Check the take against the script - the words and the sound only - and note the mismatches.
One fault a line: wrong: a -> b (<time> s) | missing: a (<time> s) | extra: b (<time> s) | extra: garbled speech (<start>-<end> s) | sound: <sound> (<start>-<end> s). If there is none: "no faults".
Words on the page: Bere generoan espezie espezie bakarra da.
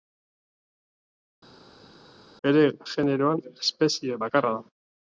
missing: espezie (4.2 s)